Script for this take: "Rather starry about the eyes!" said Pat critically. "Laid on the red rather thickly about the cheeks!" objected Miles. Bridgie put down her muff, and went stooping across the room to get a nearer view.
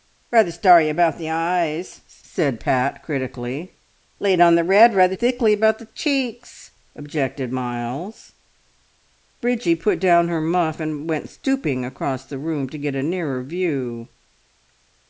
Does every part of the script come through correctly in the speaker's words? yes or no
yes